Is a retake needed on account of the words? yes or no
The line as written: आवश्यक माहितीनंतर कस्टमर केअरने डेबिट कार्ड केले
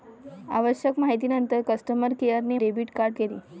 no